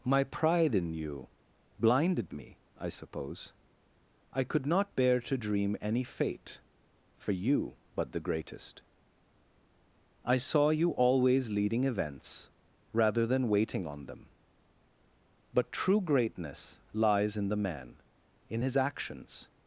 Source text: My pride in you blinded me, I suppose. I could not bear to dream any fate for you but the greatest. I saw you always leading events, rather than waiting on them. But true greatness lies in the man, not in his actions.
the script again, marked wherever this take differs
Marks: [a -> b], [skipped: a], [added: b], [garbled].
My pride in you blinded me, I suppose. I could not bear to dream any fate for you but the greatest. I saw you always leading events, rather than waiting on them. But true greatness lies in the man, [skipped: not] in his actions.